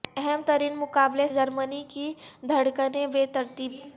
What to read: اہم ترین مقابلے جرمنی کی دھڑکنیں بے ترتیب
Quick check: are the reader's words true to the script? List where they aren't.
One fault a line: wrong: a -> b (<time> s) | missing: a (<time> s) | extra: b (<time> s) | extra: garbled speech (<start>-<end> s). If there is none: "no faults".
no faults